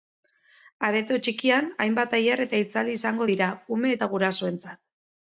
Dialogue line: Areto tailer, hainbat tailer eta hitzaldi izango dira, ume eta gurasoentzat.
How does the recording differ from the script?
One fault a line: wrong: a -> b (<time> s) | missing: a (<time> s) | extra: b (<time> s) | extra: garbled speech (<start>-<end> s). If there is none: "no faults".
wrong: tailer -> txikian (1.3 s)